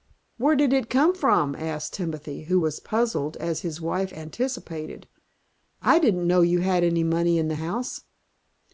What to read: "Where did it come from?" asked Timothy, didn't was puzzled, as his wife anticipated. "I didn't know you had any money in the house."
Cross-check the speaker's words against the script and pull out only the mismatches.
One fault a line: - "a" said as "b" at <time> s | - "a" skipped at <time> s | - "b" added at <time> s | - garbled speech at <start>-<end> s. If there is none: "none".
- "didn't" said as "who" at 2.5 s